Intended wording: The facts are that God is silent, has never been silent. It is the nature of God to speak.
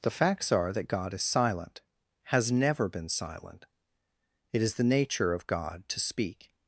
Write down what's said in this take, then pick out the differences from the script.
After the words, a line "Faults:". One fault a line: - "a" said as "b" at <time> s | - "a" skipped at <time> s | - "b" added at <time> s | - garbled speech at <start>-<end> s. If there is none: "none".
The facts are that God is silent, has never been silent. It is the nature of God to speak.
Faults:
none